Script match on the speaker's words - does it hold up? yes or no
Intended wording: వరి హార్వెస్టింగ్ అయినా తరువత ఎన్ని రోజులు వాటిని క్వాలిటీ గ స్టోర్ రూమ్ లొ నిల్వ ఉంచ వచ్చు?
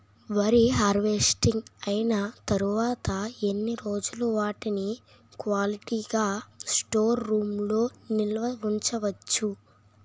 yes